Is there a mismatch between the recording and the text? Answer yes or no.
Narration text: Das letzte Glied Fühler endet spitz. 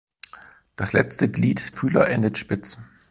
no